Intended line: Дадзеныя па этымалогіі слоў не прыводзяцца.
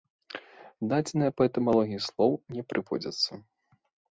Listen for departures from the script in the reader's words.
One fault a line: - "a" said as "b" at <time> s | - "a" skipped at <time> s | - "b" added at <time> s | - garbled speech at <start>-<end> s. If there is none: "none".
none